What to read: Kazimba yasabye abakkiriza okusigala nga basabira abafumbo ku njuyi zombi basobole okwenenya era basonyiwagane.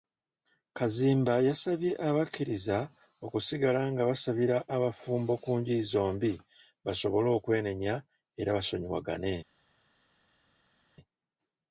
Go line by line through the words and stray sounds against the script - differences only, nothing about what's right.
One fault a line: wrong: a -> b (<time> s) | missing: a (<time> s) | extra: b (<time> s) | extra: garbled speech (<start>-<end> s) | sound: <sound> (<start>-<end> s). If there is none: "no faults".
no faults